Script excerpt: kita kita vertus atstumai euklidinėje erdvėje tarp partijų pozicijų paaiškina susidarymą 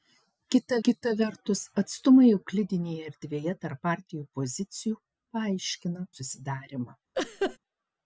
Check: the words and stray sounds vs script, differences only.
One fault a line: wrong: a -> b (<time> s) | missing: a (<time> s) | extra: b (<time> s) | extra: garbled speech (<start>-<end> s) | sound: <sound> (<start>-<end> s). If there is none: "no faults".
sound: laugh (7.1-7.6 s)